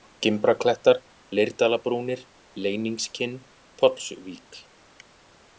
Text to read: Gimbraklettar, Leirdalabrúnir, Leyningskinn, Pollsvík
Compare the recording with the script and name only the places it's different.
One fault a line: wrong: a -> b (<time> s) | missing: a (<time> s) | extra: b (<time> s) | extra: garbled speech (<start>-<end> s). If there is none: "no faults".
no faults